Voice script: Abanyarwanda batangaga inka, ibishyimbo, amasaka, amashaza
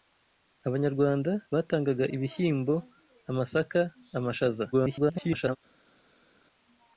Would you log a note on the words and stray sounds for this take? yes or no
yes